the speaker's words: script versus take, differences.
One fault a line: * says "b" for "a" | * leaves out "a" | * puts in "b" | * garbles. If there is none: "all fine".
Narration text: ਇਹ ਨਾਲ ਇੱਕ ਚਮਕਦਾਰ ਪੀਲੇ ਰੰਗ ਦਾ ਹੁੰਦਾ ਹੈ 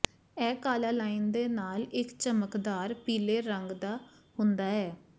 * puts in "ਕਾਲਾ ਲਾਈਨ ਦੇ"